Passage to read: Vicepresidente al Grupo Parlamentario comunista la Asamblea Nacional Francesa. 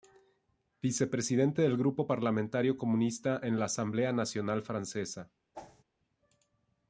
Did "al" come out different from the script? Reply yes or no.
yes